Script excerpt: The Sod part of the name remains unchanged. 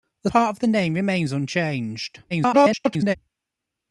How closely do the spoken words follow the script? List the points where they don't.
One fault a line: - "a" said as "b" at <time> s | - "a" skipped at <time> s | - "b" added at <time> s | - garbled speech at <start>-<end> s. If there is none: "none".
- "Sod" skipped at 0.3 s
- garbled speech at 2.3-3.2 s